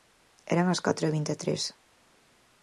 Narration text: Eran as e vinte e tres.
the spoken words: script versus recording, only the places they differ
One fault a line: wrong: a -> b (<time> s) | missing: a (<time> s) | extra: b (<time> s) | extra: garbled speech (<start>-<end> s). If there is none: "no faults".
extra: catro (0.8 s)